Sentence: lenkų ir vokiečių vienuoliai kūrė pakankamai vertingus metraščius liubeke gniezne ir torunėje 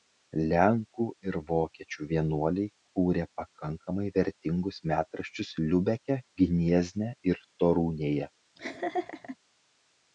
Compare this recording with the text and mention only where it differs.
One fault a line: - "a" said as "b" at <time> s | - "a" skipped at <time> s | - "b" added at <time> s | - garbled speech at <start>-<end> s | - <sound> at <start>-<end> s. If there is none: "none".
- laugh at 8.6-9.4 s